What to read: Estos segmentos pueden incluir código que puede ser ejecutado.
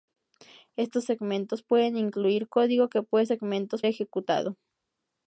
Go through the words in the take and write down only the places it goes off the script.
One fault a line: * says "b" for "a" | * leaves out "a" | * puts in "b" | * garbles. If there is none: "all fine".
* says "segmentos" for "ser"